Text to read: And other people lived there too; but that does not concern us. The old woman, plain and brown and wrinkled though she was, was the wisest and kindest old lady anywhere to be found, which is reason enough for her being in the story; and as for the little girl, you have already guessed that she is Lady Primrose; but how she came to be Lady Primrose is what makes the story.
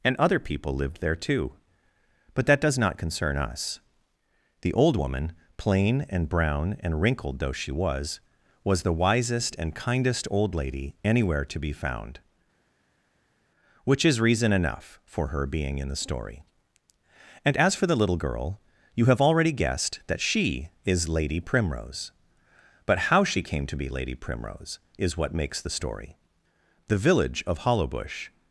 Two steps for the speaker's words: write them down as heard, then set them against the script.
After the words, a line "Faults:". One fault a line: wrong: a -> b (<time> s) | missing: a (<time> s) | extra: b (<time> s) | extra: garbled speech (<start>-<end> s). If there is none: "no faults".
And other people lived there too; but that does not concern us. The old woman, plain and brown and wrinkled though she was, was the wisest and kindest old lady anywhere to be found, which is reason enough for her being in the story; and as for the little girl, you have already guessed that she is Lady Primrose; but how she came to be Lady Primrose is what makes the story. The village of Hollowbush
Faults:
extra: The village of Hollowbush (26.9 s)